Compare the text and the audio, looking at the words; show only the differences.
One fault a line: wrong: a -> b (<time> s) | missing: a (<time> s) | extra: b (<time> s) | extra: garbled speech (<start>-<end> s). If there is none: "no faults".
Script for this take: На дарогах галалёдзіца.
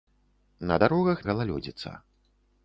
no faults